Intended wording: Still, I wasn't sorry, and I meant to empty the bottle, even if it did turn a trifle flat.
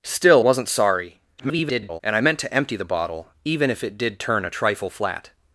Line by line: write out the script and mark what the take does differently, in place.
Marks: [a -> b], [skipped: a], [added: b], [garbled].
Still, [skipped: I] wasn't sorry, [garbled] and I meant to empty the bottle, even if it did turn a trifle flat.